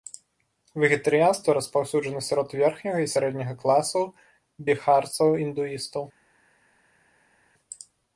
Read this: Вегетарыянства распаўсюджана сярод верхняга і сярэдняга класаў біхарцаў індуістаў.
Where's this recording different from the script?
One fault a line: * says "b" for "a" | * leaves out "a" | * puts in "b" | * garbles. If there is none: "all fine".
all fine